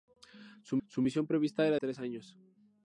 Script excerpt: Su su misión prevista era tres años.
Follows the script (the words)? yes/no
yes